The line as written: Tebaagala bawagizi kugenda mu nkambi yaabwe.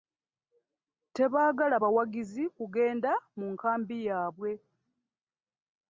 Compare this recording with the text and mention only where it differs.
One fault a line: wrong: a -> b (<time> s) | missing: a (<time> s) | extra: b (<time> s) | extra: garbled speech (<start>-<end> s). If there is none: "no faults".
no faults